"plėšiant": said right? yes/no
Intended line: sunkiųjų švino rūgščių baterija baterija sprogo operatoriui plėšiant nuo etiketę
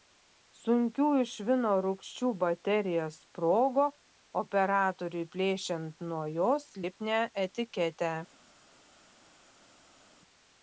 yes